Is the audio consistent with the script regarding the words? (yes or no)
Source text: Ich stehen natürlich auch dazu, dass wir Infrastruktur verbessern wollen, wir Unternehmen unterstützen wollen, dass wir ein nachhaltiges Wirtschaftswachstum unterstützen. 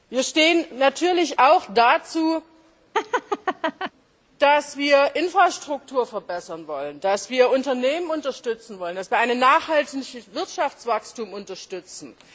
no